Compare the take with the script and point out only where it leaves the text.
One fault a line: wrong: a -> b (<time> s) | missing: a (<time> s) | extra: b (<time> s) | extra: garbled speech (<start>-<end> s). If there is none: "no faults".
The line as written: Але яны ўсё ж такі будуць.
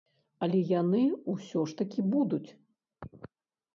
no faults